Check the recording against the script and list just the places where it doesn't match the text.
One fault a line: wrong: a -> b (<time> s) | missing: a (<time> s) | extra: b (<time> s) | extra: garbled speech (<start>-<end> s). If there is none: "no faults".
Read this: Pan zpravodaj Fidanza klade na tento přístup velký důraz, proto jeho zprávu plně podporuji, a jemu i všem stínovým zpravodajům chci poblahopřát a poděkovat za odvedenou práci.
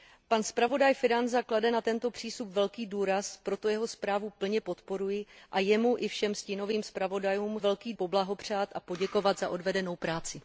wrong: chci -> velký (7.6 s)